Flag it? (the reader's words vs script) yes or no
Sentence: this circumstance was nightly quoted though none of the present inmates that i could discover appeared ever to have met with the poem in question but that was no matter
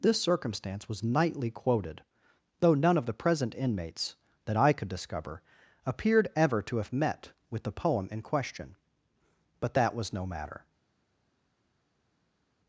no